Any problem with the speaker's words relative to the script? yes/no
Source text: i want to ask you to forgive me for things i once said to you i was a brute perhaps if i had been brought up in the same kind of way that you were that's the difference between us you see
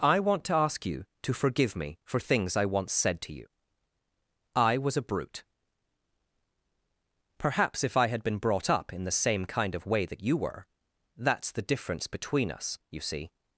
no